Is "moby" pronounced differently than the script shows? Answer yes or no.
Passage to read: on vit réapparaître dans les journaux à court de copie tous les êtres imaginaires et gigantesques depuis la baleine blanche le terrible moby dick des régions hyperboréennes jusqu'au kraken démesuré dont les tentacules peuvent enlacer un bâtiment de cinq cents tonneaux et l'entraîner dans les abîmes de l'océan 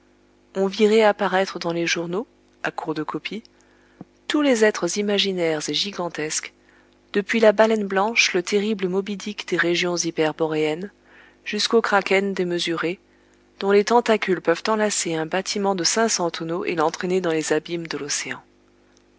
no